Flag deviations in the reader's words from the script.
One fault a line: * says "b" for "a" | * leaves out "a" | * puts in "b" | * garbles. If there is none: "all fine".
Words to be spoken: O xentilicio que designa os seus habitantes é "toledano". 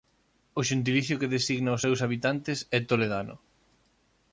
all fine